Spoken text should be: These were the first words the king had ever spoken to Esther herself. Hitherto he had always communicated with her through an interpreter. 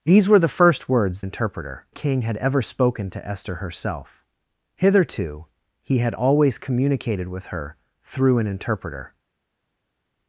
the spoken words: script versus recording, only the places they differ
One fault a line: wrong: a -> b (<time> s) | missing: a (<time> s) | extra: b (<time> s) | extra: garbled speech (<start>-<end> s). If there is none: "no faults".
wrong: the -> interpreter (1.2 s)